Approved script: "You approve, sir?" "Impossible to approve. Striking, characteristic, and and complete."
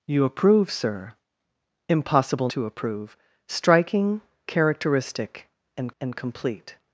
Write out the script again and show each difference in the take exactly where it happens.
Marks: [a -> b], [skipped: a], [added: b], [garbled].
"You approve, sir?" "Impossible to approve. Striking, characteristic, and and complete."